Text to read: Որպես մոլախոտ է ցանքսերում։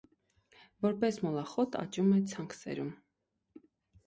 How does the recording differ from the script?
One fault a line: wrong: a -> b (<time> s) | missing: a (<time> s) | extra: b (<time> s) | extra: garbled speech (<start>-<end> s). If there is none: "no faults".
extra: աճում (1.8 s)